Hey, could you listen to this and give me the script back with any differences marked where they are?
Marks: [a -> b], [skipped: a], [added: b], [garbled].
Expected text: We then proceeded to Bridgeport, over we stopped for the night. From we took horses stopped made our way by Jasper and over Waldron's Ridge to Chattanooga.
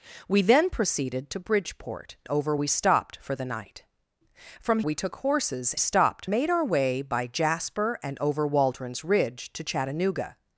We then proceeded to Bridgeport, over we stopped for the night. From we took horses stopped made our way by Jasper and over Waldron's Ridge to Chattanooga.